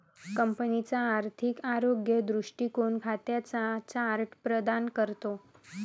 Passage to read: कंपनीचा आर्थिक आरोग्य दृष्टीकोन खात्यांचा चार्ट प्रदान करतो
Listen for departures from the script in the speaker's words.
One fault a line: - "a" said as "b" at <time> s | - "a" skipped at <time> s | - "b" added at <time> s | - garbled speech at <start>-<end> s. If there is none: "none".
none